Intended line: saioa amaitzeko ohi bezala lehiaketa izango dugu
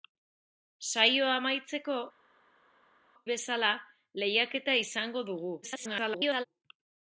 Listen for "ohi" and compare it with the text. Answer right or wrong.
wrong